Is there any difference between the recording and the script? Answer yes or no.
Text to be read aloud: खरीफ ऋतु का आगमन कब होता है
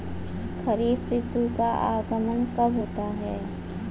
no